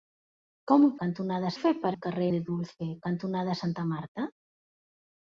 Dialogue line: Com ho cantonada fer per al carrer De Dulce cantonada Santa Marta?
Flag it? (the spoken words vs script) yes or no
no